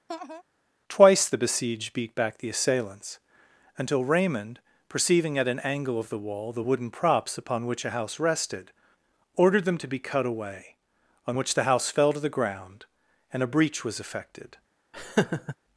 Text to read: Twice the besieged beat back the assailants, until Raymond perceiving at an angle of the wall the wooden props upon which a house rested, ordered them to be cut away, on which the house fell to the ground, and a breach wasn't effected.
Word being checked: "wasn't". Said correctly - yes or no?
no